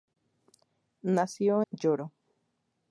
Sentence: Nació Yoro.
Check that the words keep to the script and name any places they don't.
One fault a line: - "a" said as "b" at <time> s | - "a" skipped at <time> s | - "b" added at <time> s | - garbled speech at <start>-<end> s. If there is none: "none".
none